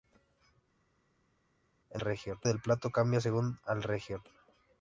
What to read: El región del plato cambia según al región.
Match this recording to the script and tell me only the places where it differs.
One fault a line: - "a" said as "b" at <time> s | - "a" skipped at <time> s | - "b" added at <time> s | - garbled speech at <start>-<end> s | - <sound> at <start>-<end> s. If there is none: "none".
none